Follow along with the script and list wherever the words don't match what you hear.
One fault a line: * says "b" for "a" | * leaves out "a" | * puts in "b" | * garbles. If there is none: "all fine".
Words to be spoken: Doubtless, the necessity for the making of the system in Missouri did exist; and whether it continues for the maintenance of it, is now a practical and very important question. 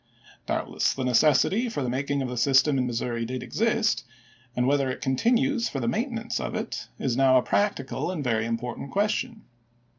all fine